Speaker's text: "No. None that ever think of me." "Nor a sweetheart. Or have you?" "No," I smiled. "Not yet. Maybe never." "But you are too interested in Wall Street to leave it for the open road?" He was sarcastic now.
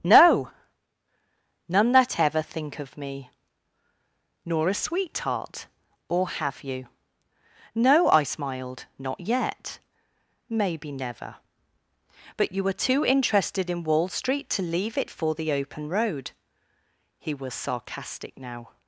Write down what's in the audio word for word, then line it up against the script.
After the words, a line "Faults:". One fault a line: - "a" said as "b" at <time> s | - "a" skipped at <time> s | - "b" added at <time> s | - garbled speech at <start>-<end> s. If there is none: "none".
"No. None that ever think of me." "Nor a sweetheart. Or have you?" "No," I smiled. "Not yet. Maybe never." "But you were too interested in Wall Street to leave it for the open road?" He was sarcastic now.
Faults:
- "are" said as "were" at 12.6 s